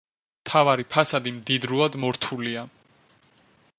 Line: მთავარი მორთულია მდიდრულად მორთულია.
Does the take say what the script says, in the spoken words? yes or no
no